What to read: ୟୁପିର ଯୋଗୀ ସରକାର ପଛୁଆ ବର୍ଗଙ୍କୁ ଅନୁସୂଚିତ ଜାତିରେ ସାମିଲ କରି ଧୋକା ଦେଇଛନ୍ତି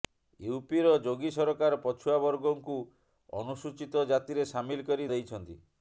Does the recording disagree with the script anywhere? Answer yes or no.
yes